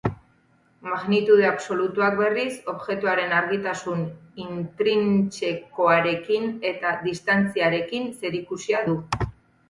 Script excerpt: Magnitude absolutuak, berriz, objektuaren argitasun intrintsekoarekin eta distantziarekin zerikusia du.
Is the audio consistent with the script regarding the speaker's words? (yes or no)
yes